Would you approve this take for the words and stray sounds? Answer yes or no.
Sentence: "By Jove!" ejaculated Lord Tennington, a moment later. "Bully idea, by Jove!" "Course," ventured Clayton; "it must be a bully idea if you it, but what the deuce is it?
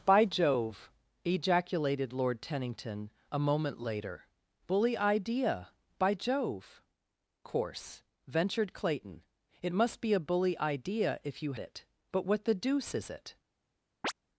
no